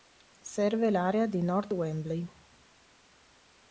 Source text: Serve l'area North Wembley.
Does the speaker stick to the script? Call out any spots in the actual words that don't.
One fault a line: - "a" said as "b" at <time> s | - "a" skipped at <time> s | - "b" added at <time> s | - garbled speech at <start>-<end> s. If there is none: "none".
- "di" added at 1.3 s